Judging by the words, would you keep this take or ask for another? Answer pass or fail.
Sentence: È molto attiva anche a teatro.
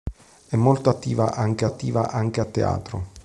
fail